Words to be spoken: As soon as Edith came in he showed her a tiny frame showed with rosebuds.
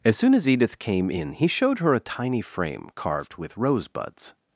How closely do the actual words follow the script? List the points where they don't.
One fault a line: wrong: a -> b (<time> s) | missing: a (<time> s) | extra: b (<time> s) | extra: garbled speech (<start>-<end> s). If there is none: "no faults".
wrong: showed -> carved (2.9 s)